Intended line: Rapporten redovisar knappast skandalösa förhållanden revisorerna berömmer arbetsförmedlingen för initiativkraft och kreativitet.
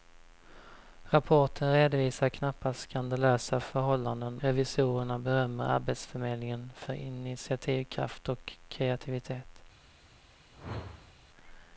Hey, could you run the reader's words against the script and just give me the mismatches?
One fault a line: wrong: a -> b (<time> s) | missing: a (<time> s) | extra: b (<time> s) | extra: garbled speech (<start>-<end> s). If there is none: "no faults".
no faults